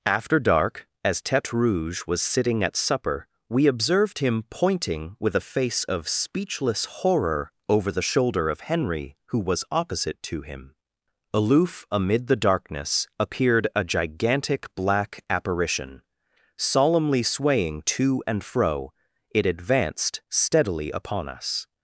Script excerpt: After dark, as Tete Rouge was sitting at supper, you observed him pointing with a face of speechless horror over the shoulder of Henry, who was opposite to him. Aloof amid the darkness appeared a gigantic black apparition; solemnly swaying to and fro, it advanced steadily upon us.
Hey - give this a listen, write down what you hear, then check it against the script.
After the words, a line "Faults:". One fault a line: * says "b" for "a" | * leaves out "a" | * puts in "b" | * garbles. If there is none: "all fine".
After dark, as Tete Rouge was sitting at supper, we observed him pointing with a face of speechless horror over the shoulder of Henry, who was opposite to him. Aloof amid the darkness appeared a gigantic black apparition; solemnly swaying to and fro, it advanced steadily upon us.
Faults:
* says "we" for "you"